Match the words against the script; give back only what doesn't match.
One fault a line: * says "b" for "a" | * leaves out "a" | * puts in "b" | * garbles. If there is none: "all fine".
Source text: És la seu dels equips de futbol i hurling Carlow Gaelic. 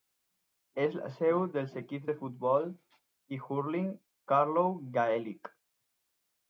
all fine